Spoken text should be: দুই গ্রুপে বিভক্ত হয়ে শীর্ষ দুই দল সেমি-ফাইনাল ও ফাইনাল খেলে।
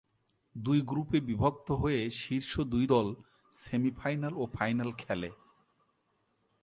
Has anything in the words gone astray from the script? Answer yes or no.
no